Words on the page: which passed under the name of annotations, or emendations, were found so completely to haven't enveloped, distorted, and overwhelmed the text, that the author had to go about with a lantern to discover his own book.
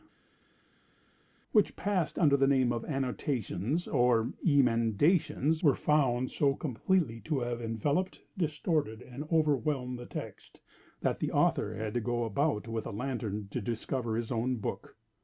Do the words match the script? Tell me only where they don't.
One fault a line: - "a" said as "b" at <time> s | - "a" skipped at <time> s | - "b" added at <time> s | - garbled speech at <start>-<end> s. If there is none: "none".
- "haven't" said as "have" at 7.4 s